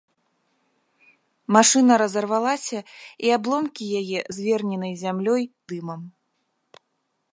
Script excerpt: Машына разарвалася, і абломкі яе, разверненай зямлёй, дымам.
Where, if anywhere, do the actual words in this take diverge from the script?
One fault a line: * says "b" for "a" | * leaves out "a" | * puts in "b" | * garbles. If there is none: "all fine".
all fine